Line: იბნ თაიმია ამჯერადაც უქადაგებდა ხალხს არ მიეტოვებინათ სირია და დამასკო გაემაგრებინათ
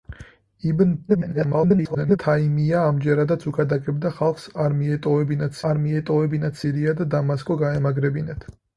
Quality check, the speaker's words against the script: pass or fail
fail